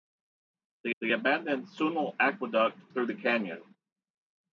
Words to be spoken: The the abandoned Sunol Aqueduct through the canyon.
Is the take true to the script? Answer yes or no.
yes